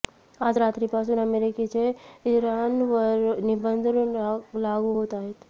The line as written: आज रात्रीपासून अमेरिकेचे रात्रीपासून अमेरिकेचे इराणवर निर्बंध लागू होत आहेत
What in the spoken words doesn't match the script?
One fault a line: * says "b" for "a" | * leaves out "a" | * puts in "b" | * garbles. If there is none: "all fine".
* leaves out "रात्रीपासून अमेरिकेचे"